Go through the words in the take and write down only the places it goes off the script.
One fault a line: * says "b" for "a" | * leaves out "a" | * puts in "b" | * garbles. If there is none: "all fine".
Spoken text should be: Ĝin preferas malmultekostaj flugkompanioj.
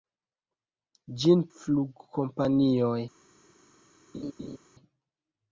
* leaves out "preferas malmultekostaj"